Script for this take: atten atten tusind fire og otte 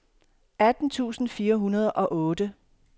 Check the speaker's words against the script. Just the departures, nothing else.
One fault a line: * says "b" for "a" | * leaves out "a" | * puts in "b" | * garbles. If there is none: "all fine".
* leaves out "atten"
* puts in "hundrede"